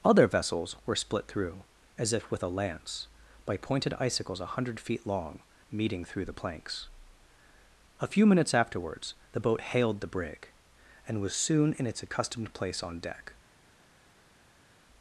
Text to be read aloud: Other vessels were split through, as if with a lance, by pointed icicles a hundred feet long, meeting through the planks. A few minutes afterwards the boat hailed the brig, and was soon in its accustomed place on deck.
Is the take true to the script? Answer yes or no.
yes